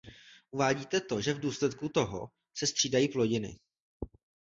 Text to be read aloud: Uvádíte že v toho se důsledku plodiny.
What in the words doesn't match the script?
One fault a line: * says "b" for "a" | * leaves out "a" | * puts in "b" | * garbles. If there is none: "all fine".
* puts in "to"
* puts in "důsledku"
* says "střídají" for "důsledku"